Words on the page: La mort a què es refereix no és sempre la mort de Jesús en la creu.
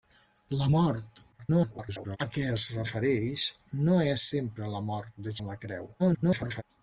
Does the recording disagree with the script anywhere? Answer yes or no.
yes